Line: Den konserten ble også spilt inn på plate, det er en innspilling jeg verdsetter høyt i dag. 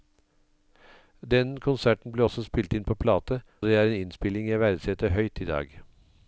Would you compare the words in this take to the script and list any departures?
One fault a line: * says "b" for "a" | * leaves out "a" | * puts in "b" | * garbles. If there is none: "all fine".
all fine